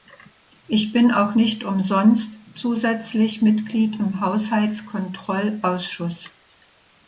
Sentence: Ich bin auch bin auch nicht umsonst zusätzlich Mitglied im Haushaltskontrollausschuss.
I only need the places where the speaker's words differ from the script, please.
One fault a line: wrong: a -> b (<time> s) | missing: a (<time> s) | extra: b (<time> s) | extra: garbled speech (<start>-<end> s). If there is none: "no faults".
missing: bin auch (1.4 s)